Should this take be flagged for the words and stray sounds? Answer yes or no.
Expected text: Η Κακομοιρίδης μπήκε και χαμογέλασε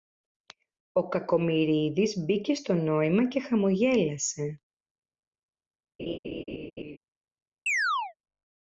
yes